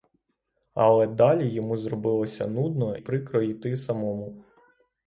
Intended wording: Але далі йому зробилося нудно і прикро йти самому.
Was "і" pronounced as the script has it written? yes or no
no